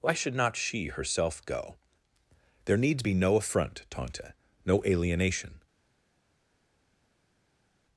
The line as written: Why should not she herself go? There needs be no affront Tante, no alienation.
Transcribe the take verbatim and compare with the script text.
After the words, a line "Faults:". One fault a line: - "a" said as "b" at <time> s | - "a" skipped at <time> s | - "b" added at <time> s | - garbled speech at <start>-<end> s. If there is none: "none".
Why should not she herself go? There needs be no affront Tante, no alienation.
Faults:
none